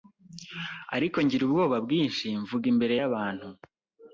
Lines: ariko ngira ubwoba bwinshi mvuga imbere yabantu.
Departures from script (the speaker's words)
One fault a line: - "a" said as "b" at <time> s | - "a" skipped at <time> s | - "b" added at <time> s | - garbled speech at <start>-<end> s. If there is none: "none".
none